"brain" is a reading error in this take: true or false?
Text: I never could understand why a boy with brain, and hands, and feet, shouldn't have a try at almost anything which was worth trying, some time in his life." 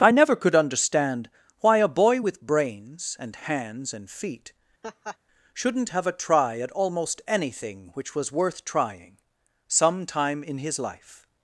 true